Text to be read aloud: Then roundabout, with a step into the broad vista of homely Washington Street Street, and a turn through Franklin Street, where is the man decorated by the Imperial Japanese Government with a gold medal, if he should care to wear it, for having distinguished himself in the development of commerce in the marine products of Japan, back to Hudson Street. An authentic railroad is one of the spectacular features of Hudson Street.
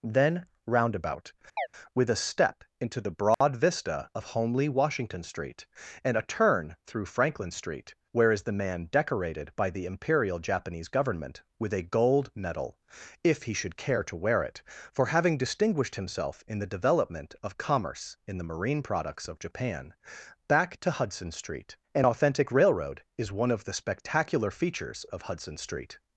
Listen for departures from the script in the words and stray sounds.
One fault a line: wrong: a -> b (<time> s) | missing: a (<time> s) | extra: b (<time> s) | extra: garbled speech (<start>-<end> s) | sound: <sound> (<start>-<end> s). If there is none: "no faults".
sound: chirp (1.6-1.7 s)
sound: dropout (3.3-3.4 s)
missing: Street (5.7 s)